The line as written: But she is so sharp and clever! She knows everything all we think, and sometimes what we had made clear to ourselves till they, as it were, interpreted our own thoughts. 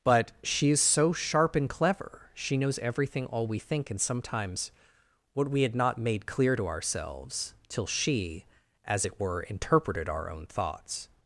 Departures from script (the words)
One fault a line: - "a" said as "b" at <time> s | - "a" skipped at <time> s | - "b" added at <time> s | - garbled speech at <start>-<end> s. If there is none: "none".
- "not" added at 5.8 s
- "they" said as "she" at 7.9 s